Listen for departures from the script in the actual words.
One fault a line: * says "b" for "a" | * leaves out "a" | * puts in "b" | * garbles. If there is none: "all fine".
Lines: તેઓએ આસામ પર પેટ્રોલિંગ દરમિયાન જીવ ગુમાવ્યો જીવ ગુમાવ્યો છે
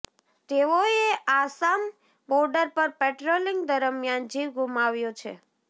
* puts in "બોર્ડર"
* leaves out "જીવ ગુમાવ્યો"